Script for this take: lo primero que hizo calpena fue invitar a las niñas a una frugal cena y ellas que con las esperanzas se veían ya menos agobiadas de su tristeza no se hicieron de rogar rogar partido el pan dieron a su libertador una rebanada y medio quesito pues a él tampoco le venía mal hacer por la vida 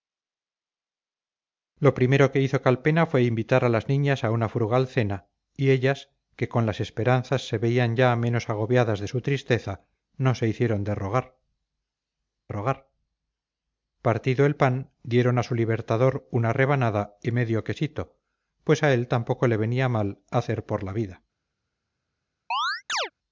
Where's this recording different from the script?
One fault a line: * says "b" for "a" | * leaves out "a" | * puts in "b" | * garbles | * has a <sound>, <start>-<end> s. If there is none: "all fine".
* has a chirp, 22.5-23.1 s